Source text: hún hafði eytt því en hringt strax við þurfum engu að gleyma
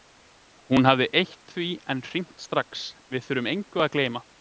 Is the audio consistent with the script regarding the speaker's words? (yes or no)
yes